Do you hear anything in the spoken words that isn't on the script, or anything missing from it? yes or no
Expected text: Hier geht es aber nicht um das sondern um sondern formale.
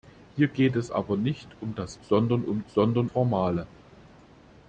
no